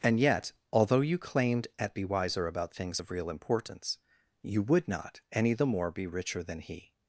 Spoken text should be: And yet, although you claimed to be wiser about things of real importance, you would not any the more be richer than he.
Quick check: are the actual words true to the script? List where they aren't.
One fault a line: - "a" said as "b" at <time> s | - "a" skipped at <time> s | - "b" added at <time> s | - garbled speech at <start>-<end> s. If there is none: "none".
- "to" said as "at" at 1.8 s